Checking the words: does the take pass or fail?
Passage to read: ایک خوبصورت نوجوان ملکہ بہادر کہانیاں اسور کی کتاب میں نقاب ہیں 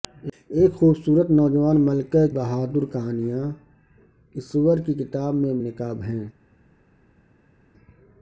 pass